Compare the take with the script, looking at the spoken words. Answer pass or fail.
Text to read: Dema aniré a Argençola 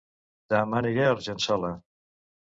pass